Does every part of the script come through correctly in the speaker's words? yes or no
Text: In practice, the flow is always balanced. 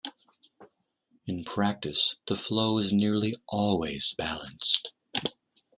no